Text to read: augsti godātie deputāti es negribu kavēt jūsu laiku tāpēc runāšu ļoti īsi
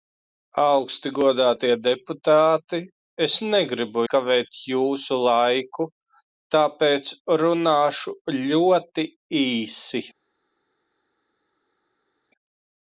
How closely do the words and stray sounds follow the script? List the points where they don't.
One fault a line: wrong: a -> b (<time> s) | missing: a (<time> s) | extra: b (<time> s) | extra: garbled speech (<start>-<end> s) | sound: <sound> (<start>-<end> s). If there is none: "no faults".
no faults